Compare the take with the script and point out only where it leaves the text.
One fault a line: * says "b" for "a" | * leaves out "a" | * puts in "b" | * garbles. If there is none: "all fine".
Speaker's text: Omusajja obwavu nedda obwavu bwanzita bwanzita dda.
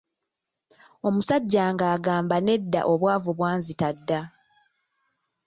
* says "ng'agamba" for "obwavu"
* leaves out "bwanzita"